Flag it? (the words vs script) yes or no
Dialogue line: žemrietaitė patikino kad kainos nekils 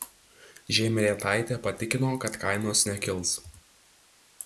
no